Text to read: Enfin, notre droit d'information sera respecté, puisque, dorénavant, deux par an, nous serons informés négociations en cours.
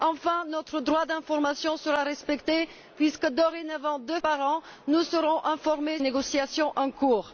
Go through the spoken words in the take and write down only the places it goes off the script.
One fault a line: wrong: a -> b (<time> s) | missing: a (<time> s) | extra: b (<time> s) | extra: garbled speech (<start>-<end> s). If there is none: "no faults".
no faults